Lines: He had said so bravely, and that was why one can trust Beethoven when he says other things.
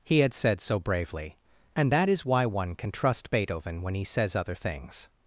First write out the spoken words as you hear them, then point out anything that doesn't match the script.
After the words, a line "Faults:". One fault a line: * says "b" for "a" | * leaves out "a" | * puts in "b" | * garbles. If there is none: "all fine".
He had said so bravely, and that is why one can trust Beethoven when he says other things.
Faults:
* says "is" for "was"